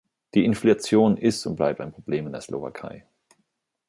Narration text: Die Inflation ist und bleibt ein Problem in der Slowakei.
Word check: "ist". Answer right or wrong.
right